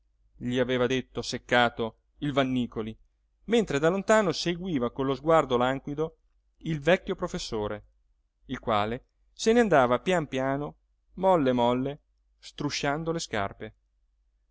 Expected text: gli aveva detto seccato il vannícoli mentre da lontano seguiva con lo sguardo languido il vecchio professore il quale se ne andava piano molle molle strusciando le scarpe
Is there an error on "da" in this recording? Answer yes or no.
no